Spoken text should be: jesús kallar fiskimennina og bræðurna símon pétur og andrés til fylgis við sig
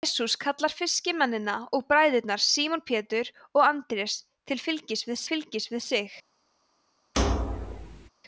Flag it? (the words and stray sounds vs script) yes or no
yes